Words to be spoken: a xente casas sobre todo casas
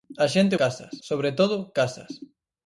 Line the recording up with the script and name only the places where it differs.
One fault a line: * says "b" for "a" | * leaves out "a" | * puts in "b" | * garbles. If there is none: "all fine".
all fine